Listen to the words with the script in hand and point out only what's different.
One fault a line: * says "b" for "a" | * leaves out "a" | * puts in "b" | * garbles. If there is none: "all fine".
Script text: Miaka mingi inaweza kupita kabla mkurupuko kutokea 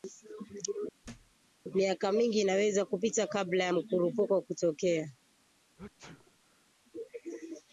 * puts in "ya"